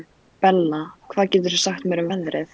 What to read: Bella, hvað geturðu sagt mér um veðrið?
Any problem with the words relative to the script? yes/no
no